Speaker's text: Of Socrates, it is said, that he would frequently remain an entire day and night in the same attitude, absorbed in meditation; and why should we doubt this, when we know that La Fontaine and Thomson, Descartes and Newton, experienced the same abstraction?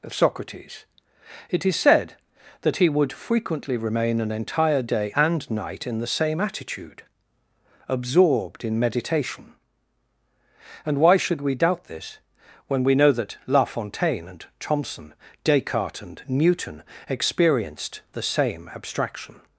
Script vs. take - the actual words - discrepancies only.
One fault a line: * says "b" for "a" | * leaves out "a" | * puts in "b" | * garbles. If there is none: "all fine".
all fine